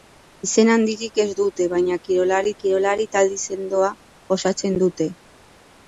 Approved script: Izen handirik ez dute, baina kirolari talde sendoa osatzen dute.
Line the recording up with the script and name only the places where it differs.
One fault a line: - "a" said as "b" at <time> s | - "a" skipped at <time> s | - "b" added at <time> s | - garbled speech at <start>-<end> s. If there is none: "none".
- "kirolari" added at 2.6 s